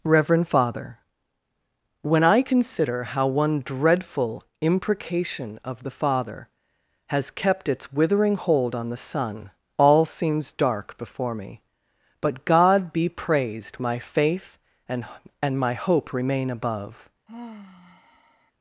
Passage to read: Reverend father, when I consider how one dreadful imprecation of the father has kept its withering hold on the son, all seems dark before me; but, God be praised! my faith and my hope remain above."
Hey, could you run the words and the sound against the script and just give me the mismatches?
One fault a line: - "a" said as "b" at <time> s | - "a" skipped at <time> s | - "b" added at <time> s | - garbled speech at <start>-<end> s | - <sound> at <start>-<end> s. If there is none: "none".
- "and" added at 15.4 s
- sigh at 17.3-18.5 s